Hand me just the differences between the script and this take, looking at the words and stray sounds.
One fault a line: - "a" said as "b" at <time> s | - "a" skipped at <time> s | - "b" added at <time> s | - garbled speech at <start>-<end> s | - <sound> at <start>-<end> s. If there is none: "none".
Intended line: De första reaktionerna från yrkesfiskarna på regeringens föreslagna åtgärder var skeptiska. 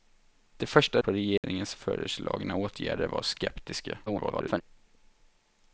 - "reaktionerna från yrkesfiskarna" skipped at 1.0 s
- dropout at 1.4-1.4 s
- garbled speech at 4.1-4.6 s